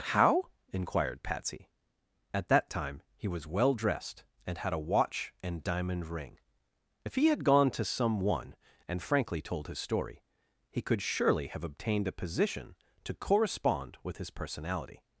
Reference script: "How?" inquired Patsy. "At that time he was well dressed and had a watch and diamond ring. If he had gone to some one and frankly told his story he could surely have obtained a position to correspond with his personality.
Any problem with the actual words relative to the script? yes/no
no